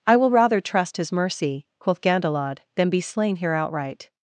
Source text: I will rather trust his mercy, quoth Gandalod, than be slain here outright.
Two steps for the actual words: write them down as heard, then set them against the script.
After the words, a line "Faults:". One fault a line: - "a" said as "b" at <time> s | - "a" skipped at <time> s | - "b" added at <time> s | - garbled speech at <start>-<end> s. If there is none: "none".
I will rather trust his mercy, quoth Gandalod, than be slain here outright.
Faults:
none